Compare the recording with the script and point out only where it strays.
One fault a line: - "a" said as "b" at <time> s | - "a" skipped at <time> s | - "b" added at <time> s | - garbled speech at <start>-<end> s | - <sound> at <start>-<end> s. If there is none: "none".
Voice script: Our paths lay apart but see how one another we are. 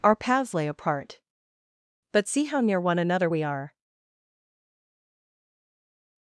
- "near" added at 2.6 s